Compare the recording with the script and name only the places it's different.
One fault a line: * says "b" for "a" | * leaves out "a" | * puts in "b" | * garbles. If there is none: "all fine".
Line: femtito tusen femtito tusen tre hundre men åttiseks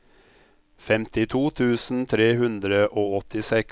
* leaves out "femtito tusen"
* says "og" for "men"